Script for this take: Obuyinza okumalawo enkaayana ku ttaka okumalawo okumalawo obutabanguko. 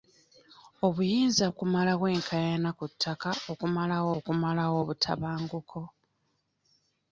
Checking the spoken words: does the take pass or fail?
pass